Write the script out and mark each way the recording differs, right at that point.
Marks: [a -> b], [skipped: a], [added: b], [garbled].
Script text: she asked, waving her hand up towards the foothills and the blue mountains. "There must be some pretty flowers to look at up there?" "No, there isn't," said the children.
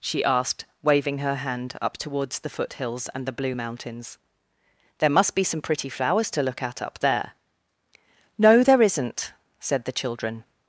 she asked, waving her hand up towards the foothills and the blue mountains. "There must be some pretty flowers to look at up there?" "No, there isn't," said the children.